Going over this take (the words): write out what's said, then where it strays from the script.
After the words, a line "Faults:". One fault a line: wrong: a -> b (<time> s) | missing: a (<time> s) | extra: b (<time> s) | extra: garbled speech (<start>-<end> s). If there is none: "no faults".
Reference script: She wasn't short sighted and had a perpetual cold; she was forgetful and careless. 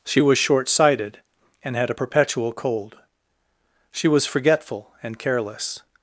She was short sighted and had a perpetual cold; she was forgetful and careless.
Faults:
wrong: wasn't -> was (0.2 s)